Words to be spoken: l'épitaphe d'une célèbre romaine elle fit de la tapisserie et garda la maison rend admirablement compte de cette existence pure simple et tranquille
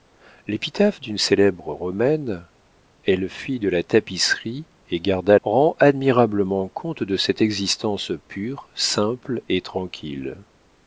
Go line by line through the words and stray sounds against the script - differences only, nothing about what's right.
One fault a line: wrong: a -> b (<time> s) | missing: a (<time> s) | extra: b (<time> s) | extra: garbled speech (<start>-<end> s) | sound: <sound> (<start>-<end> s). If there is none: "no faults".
missing: la maison (5.4 s)